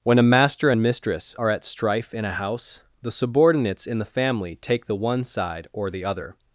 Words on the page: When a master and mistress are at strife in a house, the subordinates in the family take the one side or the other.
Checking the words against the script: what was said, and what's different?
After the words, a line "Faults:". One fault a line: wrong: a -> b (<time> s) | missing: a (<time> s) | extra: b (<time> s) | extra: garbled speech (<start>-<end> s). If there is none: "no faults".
When a master and mistress are at strife in a house, the subordinates in the family take the one side or the other.
Faults:
no faults